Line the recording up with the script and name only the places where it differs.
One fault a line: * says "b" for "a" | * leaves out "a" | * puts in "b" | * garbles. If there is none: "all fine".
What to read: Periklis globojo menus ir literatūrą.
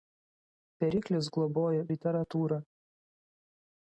* leaves out "menus ir"